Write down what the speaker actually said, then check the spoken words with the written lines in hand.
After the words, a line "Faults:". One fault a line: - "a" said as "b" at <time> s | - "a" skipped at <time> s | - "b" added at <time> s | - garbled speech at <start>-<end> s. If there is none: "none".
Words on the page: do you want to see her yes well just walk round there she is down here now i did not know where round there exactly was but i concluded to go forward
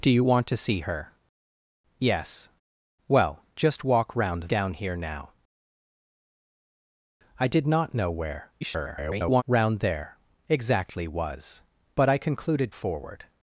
do you want to see her yes well just walk round down here now i did not know where [garbled] round there exactly was but i concluded forward
Faults:
- "there she is" skipped at 4.5 s
- garbled speech at 8.6-9.4 s
- "to go" skipped at 12.7 s